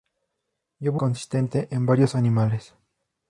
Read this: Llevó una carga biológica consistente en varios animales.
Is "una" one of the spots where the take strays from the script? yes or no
yes